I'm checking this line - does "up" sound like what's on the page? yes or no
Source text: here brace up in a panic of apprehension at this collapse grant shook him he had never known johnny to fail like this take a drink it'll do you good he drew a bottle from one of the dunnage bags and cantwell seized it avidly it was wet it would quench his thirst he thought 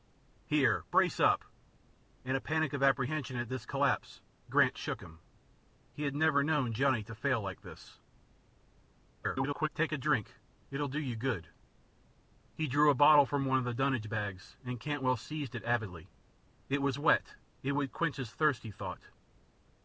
yes